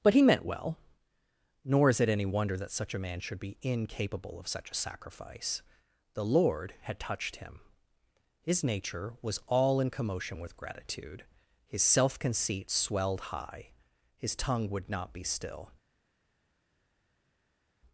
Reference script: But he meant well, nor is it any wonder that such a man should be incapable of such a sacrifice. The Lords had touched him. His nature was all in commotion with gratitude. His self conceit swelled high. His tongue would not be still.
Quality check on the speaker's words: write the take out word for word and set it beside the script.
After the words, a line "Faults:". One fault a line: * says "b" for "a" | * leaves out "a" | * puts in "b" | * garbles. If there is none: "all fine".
But he meant well, nor is it any wonder that such a man should be incapable of such a sacrifice. The Lord had touched him. His nature was all in commotion with gratitude. His self conceit swelled high. His tongue would not be still.
Faults:
* says "Lord" for "Lords"